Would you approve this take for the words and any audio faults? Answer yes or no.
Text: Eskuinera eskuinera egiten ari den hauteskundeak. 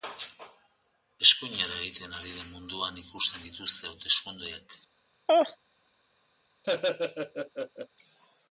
no